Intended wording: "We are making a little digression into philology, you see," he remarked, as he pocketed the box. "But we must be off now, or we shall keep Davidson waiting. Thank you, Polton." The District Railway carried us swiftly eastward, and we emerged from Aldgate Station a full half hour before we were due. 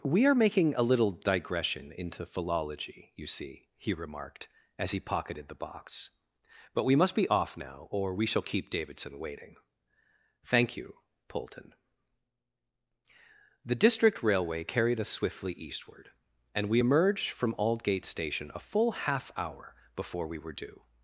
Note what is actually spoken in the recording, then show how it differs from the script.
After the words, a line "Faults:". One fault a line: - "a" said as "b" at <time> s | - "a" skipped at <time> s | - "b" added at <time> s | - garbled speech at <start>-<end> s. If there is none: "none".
"We are making a little digression into philology, you see," he remarked, as he pocketed the box. "But we must be off now, or we shall keep Davidson waiting. Thank you, Polton." The District Railway carried us swiftly eastward, and we emerged from Aldgate Station a full half hour before we were due.
Faults:
none